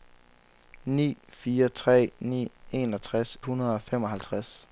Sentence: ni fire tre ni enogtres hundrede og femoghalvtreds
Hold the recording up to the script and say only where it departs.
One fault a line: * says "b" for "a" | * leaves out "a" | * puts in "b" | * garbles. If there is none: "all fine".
all fine